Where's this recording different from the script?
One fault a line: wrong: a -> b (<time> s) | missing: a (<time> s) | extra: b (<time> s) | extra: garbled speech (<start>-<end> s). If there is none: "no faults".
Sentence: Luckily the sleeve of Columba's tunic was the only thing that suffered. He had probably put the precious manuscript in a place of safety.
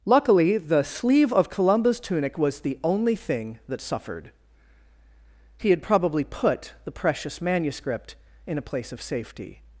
no faults